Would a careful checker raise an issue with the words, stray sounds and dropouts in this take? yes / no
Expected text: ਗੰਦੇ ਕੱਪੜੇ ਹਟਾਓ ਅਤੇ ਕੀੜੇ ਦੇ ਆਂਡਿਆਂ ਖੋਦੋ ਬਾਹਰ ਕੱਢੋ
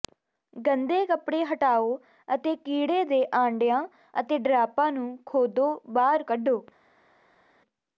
yes